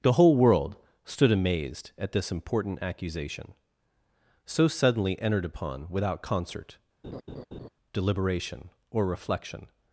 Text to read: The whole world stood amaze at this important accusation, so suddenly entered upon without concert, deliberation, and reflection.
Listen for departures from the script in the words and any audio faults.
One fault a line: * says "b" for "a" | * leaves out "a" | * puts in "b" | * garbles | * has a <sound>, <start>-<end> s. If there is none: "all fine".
* says "amazed" for "amaze"
* has a laugh, 7.0-7.7 s
* says "or" for "and"